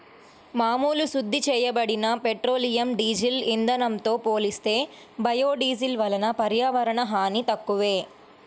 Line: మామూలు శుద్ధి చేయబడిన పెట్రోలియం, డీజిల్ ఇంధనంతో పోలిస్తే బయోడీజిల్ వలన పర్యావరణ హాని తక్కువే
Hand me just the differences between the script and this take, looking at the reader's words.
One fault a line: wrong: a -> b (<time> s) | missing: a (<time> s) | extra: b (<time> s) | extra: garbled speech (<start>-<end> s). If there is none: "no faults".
no faults